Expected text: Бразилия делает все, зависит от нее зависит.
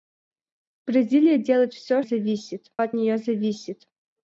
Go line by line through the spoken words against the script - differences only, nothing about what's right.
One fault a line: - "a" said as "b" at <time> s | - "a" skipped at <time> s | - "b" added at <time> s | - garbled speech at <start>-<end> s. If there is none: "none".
none